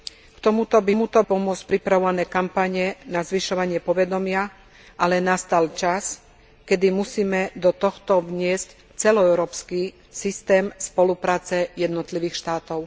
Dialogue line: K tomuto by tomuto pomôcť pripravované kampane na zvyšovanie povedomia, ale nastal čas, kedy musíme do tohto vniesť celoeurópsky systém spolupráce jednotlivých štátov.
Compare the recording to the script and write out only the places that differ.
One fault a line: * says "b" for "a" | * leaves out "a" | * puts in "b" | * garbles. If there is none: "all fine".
all fine